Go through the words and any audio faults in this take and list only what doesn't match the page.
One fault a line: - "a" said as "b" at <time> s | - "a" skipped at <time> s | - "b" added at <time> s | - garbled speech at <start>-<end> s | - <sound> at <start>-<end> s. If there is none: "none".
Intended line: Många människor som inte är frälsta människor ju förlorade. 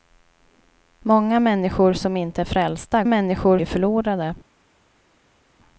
none